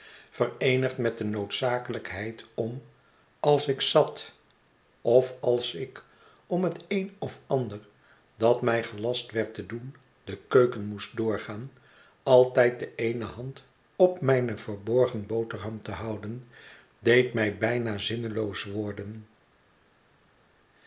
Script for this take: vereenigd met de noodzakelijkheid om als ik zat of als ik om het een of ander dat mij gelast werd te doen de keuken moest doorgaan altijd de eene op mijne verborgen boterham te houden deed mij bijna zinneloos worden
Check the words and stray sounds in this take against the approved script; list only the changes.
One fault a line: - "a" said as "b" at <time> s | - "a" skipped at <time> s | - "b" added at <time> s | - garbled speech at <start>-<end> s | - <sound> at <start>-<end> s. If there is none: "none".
- "hand" added at 13.2 s